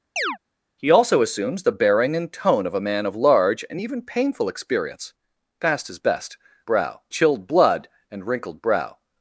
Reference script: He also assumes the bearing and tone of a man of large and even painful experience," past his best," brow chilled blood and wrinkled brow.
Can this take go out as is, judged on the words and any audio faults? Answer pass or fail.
fail